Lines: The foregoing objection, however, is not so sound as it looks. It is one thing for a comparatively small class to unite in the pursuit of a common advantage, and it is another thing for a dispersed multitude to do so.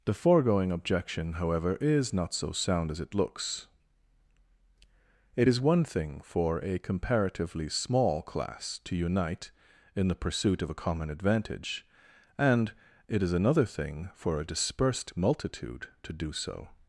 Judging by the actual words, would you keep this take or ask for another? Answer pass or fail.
pass